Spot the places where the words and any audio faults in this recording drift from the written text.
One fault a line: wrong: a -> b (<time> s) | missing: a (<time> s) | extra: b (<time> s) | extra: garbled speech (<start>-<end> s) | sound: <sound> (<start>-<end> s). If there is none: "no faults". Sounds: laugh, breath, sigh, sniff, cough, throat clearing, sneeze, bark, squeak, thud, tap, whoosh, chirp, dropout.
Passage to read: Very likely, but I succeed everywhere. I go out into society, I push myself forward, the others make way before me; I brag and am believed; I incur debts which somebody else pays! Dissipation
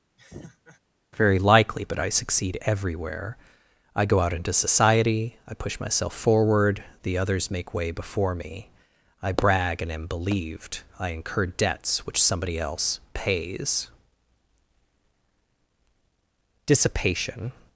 sound: laugh (0.2-0.8 s)